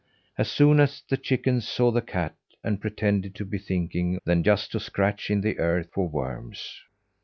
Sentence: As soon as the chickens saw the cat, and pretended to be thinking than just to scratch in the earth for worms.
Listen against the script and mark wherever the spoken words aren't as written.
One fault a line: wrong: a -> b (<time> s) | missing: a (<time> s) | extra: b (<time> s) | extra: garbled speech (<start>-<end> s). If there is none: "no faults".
no faults